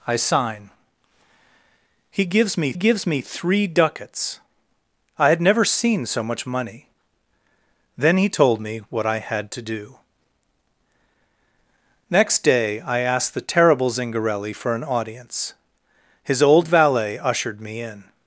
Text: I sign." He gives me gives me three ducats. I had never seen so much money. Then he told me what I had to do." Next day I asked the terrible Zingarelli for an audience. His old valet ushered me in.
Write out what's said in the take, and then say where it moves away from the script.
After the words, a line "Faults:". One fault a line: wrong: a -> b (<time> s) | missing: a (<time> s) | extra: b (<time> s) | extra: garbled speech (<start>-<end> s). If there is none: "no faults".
I sign." He gives me gives me three ducats. I had never seen so much money. Then he told me what I had to do." Next day I asked the terrible Zingarelli for an audience. His old valet ushered me in.
Faults:
no faults